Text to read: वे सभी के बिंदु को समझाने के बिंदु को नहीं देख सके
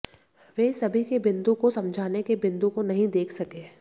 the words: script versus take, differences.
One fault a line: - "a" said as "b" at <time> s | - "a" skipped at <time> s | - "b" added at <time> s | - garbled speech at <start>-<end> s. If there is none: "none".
none